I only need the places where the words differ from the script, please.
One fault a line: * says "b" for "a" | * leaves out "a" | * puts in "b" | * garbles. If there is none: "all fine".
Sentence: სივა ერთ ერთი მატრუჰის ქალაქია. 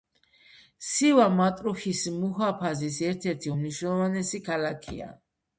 * puts in "მატრუჰის მუჰაფაზის"
* says "უმნიშვნელოვანესი" for "მატრუჰის"